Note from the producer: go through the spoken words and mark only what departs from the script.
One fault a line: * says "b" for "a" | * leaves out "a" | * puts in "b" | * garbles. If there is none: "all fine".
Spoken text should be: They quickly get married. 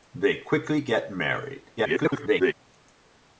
* garbles